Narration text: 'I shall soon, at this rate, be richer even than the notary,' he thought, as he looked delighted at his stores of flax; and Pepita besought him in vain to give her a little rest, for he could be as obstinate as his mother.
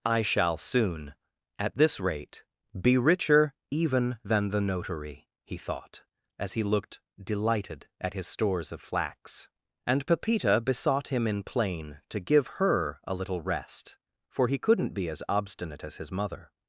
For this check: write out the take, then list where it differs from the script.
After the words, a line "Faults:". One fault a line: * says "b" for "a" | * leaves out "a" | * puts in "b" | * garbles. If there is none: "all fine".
'I shall soon, at this rate, be richer even than the notary,' he thought, as he looked delighted at his stores of flax; and Pepita besought him in plain to give her a little rest, for he couldn't be as obstinate as his mother.
Faults:
* says "plain" for "vain"
* says "couldn't" for "could"